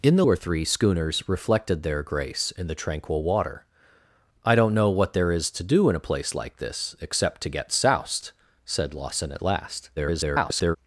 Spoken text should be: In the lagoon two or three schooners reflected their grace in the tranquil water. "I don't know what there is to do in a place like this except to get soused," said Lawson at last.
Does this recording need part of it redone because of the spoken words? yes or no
yes